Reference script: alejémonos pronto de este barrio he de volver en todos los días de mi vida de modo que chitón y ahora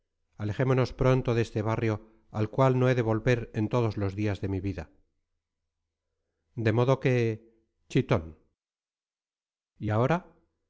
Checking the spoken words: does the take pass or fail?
fail